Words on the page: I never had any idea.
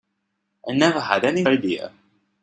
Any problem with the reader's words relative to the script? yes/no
no